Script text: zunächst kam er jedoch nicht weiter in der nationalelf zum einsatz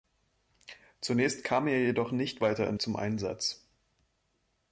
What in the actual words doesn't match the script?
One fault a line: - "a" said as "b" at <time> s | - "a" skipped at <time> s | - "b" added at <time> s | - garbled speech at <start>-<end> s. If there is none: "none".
- "der nationalelf" skipped at 2.8 s